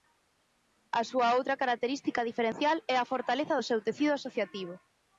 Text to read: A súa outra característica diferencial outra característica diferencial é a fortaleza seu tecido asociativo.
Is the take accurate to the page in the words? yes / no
no